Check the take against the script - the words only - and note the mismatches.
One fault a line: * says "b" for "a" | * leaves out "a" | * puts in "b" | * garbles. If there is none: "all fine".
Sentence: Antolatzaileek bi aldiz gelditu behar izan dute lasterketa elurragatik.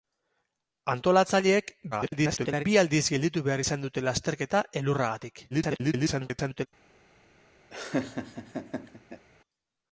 * garbles
* garbles